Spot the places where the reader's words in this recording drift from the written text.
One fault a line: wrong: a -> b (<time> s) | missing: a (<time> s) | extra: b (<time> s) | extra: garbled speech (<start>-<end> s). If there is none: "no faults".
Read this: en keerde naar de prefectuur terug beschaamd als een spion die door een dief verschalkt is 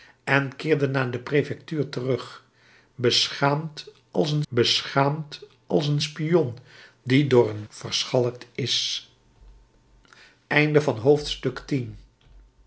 extra: beschaamd als een (4.5 s)
missing: dief (7.6 s)